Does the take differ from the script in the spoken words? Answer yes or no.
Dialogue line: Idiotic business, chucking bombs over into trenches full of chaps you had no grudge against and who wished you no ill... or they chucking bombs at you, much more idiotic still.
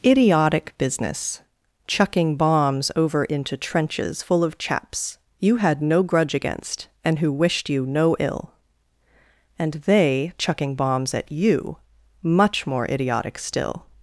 yes